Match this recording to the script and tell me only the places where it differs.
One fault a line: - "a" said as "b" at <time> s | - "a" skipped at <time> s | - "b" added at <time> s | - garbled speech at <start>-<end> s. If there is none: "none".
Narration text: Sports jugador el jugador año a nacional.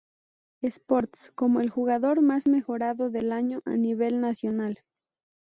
- "jugador" said as "como" at 1.4 s
- "más mejorado del" added at 2.2 s
- "nivel" added at 3.7 s